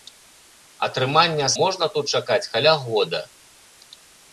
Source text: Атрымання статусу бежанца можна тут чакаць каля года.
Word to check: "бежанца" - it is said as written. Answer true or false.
false